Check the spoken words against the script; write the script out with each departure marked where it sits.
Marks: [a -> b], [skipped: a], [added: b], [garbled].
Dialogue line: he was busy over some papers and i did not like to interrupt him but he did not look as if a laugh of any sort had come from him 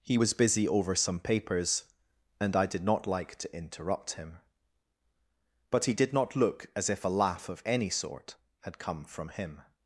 he was busy over some papers and i did not like to interrupt him but he did not look as if a laugh of any sort had come from him